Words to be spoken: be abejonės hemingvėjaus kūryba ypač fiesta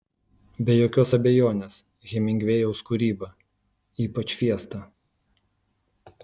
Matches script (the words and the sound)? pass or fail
fail